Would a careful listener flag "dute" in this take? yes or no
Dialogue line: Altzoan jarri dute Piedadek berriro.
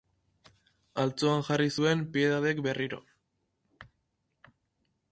yes